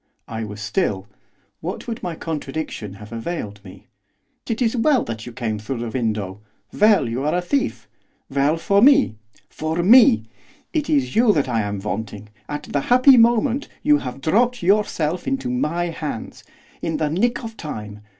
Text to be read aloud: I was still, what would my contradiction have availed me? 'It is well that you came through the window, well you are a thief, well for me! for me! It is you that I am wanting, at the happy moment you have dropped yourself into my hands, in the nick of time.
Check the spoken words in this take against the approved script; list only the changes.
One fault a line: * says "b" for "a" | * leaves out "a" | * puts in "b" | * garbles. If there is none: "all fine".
all fine